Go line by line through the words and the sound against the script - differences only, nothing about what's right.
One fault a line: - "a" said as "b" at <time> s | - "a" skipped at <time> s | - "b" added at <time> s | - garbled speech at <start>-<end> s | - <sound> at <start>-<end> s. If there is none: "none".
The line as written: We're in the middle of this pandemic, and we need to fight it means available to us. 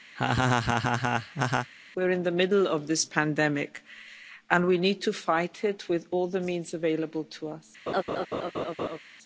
- laugh at 0.2-1.7 s
- "with all the" added at 5.9 s
- laugh at 7.9-9.0 s